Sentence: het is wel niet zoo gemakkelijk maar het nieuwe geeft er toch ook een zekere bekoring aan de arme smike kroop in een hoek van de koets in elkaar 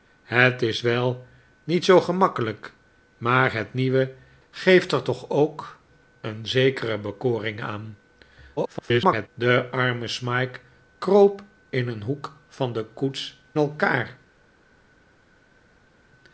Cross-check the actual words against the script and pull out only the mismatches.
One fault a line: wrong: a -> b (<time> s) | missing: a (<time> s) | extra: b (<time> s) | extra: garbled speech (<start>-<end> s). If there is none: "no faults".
extra: garbled speech (8.6-9.3 s)
missing: in (13.4 s)